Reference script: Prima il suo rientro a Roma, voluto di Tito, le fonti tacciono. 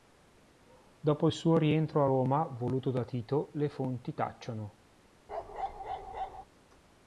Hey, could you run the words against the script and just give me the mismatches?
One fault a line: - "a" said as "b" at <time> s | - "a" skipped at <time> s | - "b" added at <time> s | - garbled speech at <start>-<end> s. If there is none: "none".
- "Prima" said as "Dopo" at 1.0 s
- "di" said as "da" at 2.9 s